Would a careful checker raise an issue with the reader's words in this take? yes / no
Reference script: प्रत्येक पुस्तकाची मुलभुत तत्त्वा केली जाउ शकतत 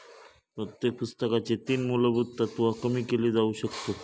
yes